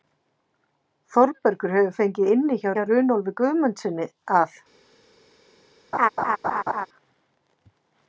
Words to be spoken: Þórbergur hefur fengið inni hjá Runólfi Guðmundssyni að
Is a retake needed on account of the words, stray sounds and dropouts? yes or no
yes